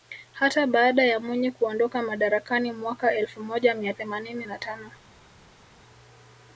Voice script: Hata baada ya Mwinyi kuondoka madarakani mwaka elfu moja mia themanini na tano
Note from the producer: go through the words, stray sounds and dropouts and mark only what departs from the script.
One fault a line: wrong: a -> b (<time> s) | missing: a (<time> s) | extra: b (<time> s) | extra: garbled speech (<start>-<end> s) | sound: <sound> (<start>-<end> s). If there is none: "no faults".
no faults